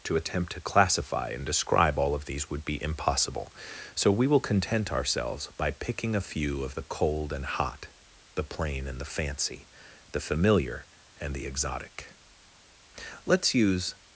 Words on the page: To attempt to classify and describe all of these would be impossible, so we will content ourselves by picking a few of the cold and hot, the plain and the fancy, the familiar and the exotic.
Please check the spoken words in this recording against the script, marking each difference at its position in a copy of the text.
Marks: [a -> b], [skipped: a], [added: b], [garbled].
To attempt to classify and describe all of these would be impossible, so we will content ourselves by picking a few of the cold and hot, the plain and the fancy, the familiar and the exotic. [added: Let's use]